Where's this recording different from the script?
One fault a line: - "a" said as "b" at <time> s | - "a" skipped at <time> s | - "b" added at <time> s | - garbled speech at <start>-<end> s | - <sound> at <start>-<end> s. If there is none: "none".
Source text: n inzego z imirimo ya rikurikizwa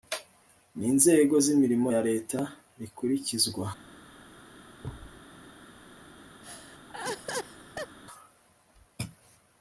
- "leta" added at 2.1 s
- thud at 4.8-5.2 s
- laugh at 6.4-8.0 s